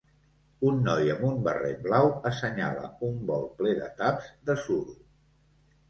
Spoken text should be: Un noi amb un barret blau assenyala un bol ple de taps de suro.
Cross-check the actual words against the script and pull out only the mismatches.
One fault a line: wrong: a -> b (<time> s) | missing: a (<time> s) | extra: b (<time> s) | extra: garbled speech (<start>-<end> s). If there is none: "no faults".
no faults